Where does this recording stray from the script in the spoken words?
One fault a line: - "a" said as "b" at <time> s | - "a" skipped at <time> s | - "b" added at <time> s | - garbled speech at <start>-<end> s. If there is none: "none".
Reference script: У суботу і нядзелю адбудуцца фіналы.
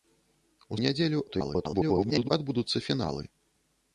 - "суботу" skipped at 0.8 s
- garbled speech at 1.3-2.3 s